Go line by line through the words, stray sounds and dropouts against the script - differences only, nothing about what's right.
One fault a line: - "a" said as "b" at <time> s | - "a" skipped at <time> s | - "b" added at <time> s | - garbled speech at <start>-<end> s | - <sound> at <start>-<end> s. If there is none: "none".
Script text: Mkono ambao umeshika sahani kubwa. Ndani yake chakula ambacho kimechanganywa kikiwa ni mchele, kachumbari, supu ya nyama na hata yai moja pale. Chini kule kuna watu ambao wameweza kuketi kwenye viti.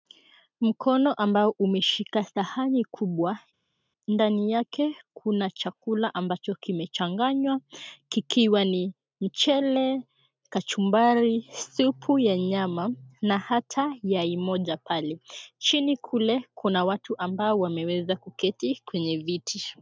- "kuna" added at 5.1 s